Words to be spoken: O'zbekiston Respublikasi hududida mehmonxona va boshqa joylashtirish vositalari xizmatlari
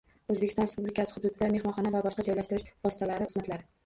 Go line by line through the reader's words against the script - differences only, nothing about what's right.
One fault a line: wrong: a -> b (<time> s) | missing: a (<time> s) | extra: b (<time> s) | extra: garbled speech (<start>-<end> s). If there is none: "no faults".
no faults